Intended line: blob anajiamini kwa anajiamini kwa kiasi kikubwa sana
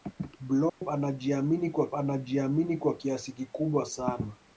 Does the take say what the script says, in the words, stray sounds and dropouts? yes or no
no